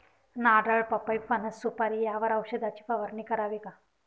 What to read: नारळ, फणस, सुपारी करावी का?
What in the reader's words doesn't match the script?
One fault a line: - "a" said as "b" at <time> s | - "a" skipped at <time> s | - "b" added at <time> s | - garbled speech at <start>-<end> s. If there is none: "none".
- "पपई" added at 0.8 s
- "यावर औषधाची फवारणी" added at 2.0 s